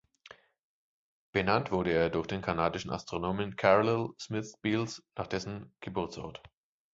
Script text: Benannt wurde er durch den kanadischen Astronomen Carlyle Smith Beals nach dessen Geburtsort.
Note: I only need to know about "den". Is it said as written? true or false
true